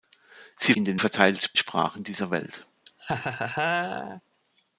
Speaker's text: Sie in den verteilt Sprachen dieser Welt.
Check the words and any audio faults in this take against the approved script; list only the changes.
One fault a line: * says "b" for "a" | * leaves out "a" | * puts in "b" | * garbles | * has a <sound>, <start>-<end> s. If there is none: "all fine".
* has a laugh, 2.9-4.2 s